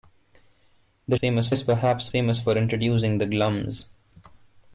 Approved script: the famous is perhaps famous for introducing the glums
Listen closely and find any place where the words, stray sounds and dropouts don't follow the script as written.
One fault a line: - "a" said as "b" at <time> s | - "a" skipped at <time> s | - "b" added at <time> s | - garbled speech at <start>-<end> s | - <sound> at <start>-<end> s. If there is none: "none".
none